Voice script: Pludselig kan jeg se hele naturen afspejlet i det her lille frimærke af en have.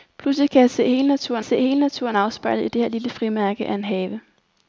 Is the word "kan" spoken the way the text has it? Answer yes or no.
yes